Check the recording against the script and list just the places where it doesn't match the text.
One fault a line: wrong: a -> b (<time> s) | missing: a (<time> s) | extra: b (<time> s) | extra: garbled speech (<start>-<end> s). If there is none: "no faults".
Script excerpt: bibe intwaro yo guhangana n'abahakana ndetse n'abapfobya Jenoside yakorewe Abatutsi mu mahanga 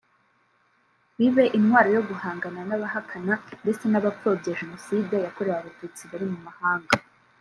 extra: bari (6.1 s)